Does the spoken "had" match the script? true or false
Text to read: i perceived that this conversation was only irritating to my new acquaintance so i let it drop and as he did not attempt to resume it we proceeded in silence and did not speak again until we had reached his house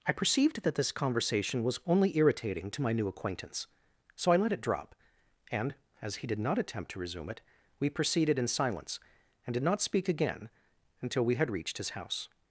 true